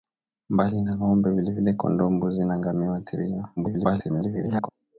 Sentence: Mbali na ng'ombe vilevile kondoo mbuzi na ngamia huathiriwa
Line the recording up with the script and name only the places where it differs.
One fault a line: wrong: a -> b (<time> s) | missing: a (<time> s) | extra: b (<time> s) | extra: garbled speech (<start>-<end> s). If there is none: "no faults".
extra: garbled speech (3.6-4.7 s)